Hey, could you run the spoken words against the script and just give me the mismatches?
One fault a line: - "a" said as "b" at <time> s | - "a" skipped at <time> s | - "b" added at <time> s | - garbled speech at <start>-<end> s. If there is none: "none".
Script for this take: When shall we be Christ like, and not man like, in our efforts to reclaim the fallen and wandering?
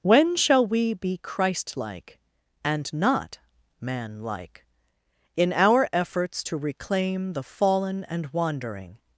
none